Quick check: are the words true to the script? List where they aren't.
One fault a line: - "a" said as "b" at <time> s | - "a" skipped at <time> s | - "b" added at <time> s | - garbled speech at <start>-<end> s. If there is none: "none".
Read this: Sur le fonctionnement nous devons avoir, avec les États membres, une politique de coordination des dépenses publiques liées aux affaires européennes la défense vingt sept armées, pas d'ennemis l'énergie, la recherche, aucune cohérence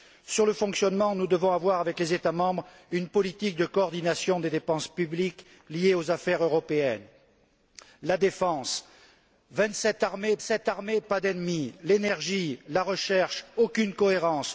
- "sept armées" added at 10.4 s